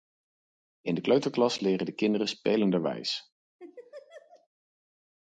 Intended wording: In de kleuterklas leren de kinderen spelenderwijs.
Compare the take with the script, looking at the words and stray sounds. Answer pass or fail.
fail